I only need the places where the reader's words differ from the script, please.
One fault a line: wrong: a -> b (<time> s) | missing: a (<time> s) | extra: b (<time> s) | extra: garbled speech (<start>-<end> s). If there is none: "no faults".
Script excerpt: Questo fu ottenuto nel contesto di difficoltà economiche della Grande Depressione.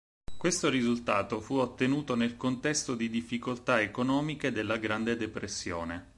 extra: risultato (0.7 s)